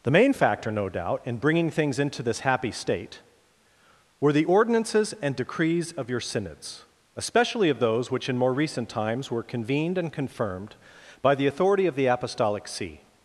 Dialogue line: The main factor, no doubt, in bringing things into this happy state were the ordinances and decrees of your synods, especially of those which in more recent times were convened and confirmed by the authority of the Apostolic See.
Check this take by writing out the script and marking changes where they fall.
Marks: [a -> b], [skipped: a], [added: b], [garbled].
The main factor, no doubt, in bringing things into this happy state were the ordinances and decrees of your synods, especially of those which in more recent times were convened and confirmed by the authority of the Apostolic See.